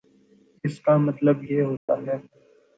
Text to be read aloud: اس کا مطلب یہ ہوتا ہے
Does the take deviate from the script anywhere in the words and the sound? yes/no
yes